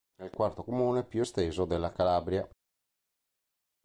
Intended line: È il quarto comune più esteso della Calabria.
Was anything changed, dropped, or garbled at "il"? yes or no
no